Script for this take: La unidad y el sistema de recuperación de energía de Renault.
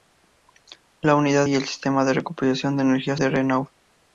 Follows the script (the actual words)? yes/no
yes